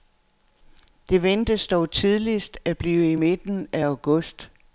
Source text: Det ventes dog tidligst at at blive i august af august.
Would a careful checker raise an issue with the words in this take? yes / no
yes